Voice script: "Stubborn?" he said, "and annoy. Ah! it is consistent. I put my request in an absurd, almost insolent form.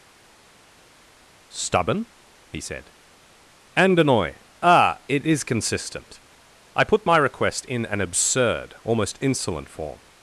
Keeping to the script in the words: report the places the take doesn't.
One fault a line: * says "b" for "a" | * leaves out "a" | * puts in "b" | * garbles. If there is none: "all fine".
all fine